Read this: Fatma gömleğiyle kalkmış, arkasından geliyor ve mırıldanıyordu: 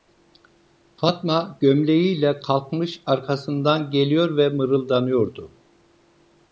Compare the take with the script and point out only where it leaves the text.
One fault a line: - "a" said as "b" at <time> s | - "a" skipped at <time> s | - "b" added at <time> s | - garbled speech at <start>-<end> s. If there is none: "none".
none